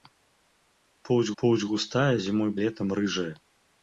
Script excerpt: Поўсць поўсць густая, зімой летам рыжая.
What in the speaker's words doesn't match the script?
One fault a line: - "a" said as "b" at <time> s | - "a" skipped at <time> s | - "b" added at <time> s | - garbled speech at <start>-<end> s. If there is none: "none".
none